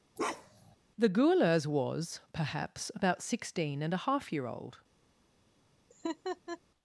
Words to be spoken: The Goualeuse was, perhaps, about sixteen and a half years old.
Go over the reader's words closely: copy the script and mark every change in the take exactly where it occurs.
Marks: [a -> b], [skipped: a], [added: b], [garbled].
The Goualeuse was, perhaps, about sixteen and a half [years -> year] old.